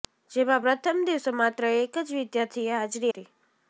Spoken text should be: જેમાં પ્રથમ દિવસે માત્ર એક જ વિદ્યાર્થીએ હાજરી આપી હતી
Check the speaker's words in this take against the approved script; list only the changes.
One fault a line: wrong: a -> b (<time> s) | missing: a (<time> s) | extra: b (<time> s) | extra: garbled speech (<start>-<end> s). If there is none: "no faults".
missing: આપી (3.1 s)